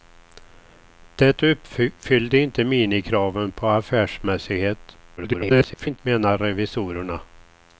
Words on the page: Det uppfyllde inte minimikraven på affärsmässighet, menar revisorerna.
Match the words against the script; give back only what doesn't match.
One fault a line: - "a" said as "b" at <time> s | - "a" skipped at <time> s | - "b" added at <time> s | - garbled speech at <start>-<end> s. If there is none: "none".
- garbled speech at 5.2-6.0 s